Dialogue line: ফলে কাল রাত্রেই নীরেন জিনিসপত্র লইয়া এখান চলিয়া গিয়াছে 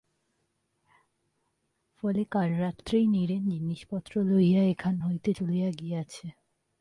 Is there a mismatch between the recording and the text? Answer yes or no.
yes